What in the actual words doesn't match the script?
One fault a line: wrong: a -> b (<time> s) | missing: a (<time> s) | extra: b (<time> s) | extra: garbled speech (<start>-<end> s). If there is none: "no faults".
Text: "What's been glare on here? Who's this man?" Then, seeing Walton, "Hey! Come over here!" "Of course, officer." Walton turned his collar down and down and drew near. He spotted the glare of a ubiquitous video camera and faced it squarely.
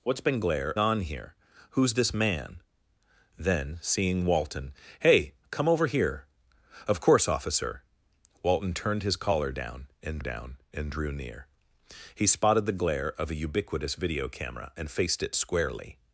no faults